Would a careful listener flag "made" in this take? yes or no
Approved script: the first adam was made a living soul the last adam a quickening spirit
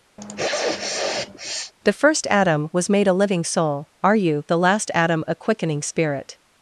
no